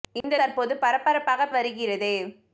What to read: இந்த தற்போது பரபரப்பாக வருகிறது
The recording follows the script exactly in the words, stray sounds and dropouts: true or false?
false